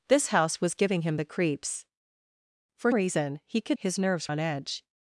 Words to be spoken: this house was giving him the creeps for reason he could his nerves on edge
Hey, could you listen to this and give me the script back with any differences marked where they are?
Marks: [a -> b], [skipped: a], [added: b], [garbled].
this house was giving him the creeps for reason he could his nerves on edge